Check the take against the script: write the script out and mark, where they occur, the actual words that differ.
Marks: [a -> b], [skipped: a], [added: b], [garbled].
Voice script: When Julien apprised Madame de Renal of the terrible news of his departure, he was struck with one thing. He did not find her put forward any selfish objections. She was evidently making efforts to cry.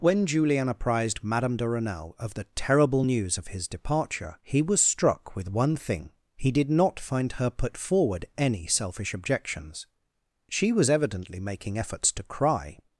When Julien apprised Madame de Renal of the terrible news of his departure, he was struck with one thing. He did not find her put forward any selfish objections. She was evidently making efforts to cry.